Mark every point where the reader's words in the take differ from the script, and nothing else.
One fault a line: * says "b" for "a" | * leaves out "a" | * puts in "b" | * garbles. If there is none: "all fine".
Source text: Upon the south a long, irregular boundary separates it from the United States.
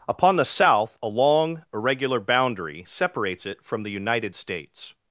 all fine